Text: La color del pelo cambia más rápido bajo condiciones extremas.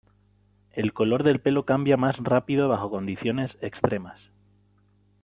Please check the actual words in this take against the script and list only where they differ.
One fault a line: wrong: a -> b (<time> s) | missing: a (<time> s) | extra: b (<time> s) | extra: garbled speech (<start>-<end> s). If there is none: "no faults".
wrong: La -> El (0.7 s)